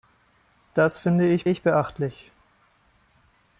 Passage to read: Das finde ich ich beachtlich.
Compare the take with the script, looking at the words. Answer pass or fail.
pass